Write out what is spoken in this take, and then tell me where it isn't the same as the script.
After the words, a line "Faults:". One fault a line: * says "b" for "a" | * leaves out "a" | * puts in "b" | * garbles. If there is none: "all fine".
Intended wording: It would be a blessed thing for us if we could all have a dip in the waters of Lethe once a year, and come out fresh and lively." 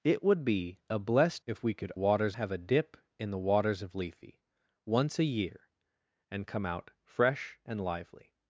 It would be a blessed if we could waters have a dip in the waters of Lethe once a year, and come out fresh and lively."
Faults:
* leaves out "thing for us"
* says "waters" for "all"